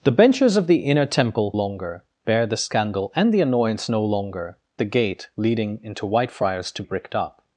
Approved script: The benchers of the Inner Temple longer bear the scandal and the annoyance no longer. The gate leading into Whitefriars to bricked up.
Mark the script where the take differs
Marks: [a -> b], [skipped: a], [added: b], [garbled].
The benchers of the Inner Temple longer bear the scandal and the annoyance no longer. The gate leading into Whitefriars to bricked up.